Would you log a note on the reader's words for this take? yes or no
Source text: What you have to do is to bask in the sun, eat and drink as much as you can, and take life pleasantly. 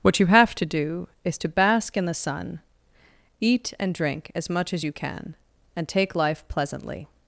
no